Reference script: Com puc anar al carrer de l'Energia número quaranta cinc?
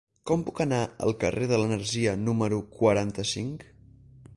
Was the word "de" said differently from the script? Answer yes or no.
no